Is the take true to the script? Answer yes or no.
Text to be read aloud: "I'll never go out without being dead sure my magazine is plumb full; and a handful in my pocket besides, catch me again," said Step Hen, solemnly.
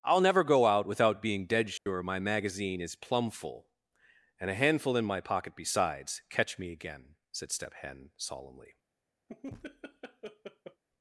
yes